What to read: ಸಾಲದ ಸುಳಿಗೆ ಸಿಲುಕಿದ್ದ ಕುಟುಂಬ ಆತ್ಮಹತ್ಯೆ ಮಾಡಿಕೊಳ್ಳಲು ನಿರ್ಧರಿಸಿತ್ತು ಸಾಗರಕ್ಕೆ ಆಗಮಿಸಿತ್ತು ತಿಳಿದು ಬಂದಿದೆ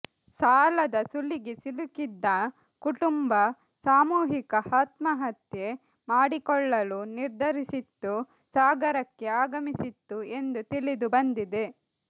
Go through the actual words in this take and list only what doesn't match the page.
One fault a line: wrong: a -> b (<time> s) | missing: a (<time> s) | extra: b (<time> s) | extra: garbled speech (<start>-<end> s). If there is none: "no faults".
extra: ಸಾಮೂಹಿಕ (3.8 s)
extra: ಎಂದು (10.4 s)